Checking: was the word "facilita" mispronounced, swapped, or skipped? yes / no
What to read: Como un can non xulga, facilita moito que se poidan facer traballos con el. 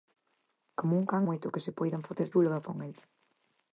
yes